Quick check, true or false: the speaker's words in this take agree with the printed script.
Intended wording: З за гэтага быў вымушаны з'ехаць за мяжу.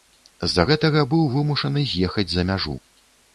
true